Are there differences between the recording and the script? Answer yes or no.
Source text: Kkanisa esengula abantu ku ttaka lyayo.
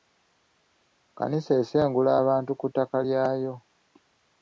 no